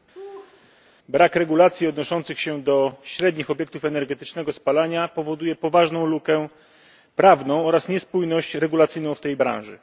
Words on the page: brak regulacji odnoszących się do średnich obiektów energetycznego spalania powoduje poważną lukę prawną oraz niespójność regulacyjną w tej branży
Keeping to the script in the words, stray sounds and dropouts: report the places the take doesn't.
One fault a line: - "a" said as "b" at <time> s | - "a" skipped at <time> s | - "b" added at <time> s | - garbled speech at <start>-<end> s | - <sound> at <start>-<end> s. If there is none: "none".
- laugh at 0.1-0.7 s